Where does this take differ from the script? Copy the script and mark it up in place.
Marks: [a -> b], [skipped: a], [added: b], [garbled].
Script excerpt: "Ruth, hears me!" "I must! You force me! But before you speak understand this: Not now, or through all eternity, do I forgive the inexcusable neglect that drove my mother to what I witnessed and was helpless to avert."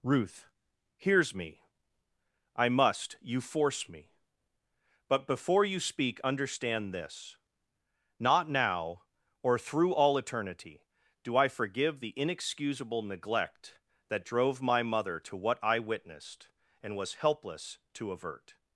"Ruth, hears me!" "I must! You force me! But before you speak understand this: Not now, or through all eternity, do I forgive the inexcusable neglect that drove my mother to what I witnessed and was helpless to avert."